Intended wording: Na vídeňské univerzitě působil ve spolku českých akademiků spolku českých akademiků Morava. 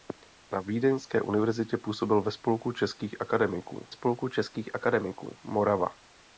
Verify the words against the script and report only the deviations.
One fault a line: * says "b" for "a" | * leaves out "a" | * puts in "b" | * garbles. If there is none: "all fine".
all fine